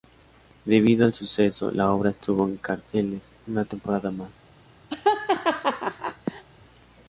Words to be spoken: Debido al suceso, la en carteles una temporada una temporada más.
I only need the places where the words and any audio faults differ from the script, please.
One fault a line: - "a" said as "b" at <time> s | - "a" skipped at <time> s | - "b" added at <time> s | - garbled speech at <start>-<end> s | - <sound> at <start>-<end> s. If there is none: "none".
- "obra estuvo" added at 1.9 s
- "una temporada" skipped at 4.1 s
- laugh at 4.9-6.4 s